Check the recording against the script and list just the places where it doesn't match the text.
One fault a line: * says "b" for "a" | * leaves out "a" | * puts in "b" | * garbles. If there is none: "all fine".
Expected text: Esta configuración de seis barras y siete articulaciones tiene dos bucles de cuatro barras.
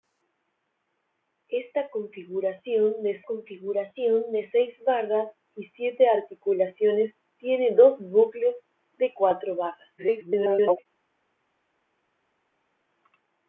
* puts in "configuración de"
* garbles